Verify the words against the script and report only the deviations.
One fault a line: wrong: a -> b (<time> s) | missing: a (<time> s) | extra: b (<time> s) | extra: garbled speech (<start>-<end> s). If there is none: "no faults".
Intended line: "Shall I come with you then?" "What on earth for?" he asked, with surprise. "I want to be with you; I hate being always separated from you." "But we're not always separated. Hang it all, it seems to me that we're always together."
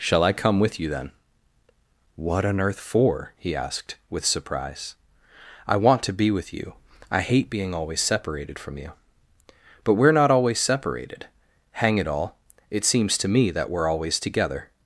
no faults